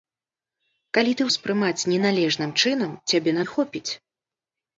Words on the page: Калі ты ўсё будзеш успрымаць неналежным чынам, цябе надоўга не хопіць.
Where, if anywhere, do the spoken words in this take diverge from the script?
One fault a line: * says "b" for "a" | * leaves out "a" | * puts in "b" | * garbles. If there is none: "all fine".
* leaves out "ўсё будзеш"
* leaves out "надоўга"